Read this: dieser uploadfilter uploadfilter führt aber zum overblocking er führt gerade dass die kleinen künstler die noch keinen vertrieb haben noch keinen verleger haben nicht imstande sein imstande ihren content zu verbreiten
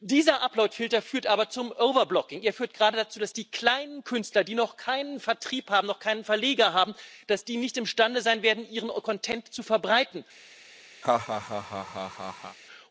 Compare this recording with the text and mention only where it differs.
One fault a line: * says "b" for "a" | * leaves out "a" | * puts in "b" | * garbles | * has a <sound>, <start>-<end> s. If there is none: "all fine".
* leaves out "uploadfilter"
* puts in "dazu"
* says "werden" for "imstande"
* has a laugh, 11.0-12.6 s